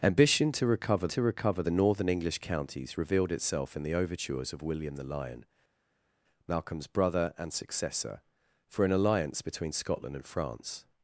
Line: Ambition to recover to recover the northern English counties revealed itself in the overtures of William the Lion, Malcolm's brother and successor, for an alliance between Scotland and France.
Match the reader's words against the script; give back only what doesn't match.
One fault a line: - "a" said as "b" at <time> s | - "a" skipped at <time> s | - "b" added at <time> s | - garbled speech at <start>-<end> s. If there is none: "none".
none